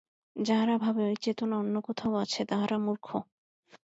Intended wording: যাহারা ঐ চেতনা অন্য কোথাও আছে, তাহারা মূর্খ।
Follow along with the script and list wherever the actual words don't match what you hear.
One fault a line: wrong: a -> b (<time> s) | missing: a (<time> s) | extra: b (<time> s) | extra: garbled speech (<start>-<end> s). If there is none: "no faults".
extra: ভাবে (0.8 s)